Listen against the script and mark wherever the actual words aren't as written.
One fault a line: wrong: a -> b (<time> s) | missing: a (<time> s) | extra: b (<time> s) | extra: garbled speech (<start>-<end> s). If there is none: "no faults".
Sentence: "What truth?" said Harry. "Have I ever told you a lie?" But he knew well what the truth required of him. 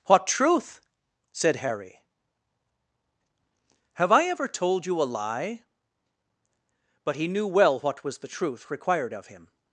extra: was (8.0 s)